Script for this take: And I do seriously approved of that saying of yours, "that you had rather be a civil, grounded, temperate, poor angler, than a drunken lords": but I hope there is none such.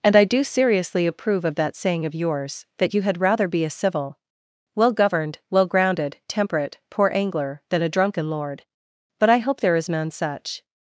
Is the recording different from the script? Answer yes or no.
yes